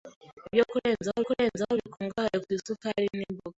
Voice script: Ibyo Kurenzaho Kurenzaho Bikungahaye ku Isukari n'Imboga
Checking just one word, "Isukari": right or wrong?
right